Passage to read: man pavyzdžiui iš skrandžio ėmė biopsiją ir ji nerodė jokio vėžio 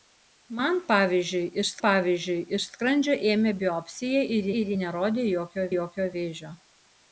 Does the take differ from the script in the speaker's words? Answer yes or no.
yes